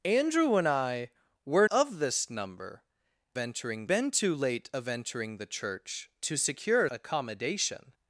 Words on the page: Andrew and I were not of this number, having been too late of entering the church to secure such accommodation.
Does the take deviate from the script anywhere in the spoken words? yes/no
yes